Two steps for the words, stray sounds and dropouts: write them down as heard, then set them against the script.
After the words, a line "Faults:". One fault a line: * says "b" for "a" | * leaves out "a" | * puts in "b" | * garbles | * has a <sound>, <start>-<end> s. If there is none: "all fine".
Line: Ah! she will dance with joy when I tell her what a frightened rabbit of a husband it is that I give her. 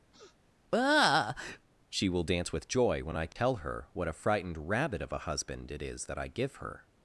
Ah! she will dance with joy when I tell her what a frightened rabbit of a husband it is that I give her.
Faults:
* has a sniff, 0.1-0.4 s
* has a dropout, 3.3-3.4 s